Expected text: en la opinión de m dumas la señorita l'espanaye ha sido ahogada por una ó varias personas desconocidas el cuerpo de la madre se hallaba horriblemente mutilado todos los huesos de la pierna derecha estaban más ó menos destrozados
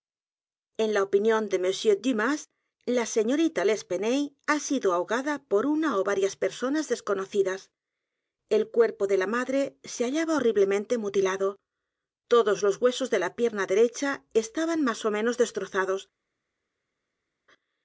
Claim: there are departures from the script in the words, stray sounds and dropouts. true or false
false